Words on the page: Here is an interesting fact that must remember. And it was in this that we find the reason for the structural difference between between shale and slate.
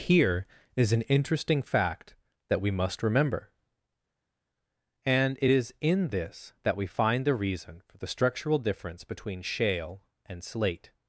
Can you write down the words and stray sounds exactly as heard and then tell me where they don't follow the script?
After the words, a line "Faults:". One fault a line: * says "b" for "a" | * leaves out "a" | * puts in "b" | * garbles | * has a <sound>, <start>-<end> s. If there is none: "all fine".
Here is an interesting fact that we must remember. And it is in this that we find the reason for the structural difference between shale and slate.
Faults:
* puts in "we"
* says "is" for "was"
* leaves out "between"